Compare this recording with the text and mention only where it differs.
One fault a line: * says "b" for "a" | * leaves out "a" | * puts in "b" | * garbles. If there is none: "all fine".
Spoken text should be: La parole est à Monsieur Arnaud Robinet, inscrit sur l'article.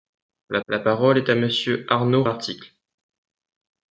* puts in "la"
* leaves out "Robinet inscrit sur"